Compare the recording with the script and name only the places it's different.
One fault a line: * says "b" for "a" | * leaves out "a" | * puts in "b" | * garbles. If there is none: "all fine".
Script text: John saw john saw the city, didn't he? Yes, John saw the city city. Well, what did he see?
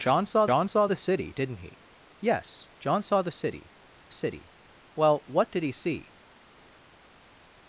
all fine